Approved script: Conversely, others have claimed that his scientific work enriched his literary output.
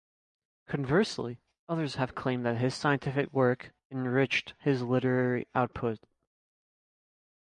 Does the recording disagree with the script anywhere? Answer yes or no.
no